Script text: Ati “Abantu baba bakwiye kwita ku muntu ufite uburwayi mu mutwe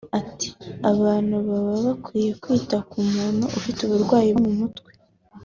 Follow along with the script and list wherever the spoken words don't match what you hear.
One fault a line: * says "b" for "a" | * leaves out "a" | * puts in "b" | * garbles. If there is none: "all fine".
all fine